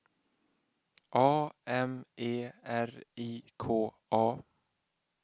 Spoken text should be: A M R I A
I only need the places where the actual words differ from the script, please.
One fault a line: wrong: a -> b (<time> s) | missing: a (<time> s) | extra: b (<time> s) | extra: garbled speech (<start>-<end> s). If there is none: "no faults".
extra: E (2.2 s)
extra: K (3.6 s)